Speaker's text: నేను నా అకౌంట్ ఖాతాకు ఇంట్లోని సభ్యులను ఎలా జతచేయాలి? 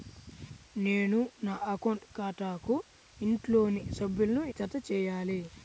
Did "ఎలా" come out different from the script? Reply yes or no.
yes